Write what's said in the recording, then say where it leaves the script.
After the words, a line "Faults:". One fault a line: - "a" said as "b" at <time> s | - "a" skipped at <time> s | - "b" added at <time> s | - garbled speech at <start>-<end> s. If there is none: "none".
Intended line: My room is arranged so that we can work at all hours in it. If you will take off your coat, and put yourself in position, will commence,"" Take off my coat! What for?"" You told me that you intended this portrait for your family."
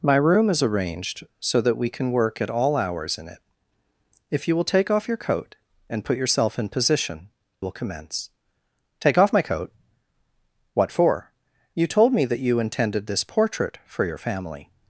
My room is arranged so that we can work at all hours in it. If you will take off your coat, and put yourself in position, will commence,"" Take off my coat! What for?"" You told me that you intended this portrait for your family."
Faults:
none